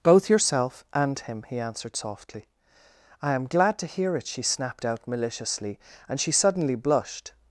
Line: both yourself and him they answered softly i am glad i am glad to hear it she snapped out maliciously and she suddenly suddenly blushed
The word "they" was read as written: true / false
false